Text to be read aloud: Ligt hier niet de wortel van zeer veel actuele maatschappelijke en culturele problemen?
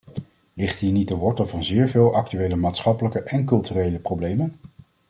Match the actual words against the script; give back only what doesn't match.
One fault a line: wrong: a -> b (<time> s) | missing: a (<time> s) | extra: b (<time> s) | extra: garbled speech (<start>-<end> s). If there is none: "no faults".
no faults